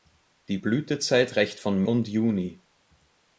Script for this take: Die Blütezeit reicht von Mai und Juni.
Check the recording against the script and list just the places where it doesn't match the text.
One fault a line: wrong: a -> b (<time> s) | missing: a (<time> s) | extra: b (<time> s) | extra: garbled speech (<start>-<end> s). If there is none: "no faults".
missing: Mai (1.8 s)